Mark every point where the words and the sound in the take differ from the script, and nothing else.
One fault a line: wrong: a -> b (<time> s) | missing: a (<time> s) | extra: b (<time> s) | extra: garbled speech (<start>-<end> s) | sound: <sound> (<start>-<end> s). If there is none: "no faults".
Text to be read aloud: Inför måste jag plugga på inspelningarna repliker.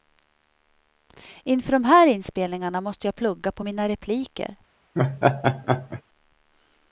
extra: de här inspelningarna (1.7 s)
wrong: inspelningarna -> mina (3.6 s)
sound: laugh (4.9-6.0 s)